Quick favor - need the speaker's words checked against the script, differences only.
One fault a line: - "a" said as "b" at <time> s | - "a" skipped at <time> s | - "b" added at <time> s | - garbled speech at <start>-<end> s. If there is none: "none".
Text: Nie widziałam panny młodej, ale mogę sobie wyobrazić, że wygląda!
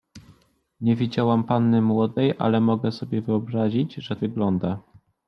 none